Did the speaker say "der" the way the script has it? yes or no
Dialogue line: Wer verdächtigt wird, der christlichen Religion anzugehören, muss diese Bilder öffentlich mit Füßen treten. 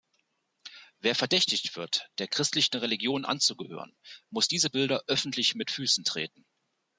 yes